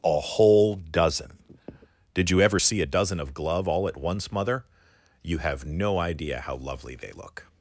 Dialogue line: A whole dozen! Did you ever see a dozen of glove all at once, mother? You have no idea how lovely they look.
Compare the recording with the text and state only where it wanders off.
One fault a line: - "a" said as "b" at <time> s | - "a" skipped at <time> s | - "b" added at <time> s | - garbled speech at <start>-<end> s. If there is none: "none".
none